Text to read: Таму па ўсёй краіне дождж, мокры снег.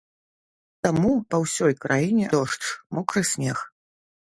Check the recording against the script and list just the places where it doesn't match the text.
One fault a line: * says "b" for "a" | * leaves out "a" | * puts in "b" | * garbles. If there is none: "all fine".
all fine